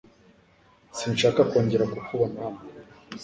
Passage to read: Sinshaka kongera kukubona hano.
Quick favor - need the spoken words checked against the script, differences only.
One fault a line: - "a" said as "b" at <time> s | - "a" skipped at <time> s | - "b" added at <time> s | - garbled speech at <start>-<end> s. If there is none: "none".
none